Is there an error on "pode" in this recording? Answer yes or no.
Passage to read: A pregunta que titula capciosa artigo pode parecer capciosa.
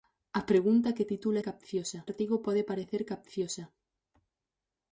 no